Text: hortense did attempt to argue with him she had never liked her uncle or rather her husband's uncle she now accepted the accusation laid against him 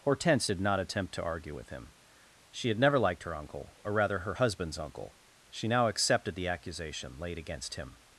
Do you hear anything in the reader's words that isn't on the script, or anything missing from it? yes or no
yes